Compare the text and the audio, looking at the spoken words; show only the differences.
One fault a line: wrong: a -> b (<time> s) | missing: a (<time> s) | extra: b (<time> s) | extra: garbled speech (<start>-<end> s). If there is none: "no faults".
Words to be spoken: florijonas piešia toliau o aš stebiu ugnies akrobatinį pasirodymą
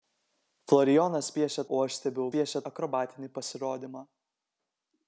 missing: toliau (1.6 s)
wrong: ugnies -> piešia (2.3 s)